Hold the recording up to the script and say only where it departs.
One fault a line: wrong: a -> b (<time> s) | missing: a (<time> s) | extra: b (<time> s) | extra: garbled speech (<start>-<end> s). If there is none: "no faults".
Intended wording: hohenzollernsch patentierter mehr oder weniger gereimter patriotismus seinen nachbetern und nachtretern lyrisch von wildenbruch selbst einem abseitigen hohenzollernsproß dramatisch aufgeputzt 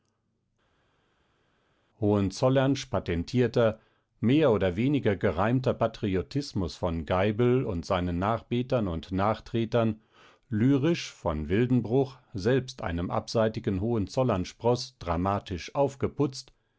extra: von geibel und (6.8 s)